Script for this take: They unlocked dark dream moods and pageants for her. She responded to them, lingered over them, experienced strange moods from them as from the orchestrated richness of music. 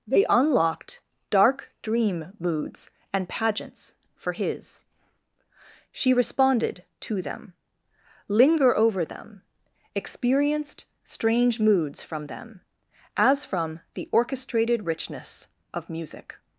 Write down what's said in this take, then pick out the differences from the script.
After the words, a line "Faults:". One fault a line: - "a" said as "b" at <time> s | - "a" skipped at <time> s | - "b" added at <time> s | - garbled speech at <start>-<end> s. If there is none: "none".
They unlocked dark dream moods and pageants for his. She responded to them, linger over them, experienced strange moods from them as from the orchestrated richness of music.
Faults:
- "her" said as "his" at 4.3 s
- "lingered" said as "linger" at 8.3 s